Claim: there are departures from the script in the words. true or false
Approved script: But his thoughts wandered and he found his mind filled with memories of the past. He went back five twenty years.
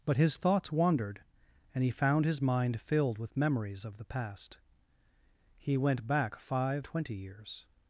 false